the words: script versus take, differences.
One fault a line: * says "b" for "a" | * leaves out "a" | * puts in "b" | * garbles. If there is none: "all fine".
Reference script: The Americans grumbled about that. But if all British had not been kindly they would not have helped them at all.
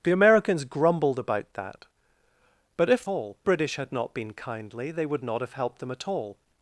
all fine